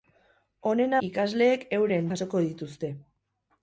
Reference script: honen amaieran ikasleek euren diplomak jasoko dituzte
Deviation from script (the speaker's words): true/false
true